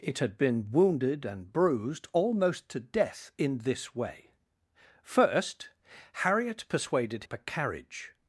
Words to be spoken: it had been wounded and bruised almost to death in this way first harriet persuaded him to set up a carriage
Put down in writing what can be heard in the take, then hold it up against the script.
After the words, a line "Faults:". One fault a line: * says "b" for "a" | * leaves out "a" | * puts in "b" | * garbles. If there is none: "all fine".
it had been wounded and bruised almost to death in this way first harriet persuaded up a carriage
Faults:
* leaves out "him to set"